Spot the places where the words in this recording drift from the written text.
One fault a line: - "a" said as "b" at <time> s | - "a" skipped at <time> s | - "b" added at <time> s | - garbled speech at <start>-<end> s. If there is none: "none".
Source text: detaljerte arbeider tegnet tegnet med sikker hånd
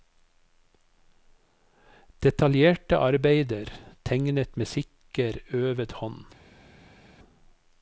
- "tegnet" skipped at 4.6 s
- "øvet" added at 5.5 s